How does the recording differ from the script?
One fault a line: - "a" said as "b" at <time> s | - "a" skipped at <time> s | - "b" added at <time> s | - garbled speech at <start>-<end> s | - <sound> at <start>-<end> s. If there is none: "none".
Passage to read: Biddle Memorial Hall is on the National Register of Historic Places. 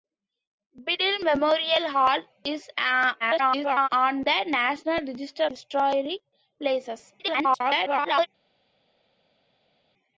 - garbled speech at 3.2-3.9 s
- "of" skipped at 5.5 s
- garbled speech at 7.2-8.3 s